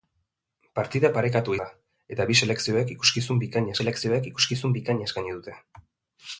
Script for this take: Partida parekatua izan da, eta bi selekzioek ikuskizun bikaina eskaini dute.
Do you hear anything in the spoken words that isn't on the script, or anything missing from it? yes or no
yes